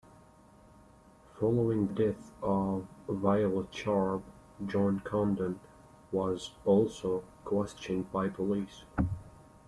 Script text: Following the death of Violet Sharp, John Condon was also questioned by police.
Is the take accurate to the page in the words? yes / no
no